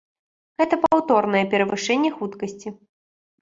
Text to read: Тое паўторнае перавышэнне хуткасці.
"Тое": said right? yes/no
no